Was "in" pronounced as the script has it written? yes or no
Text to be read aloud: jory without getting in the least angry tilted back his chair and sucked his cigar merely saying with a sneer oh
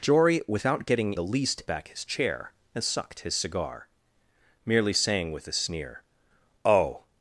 no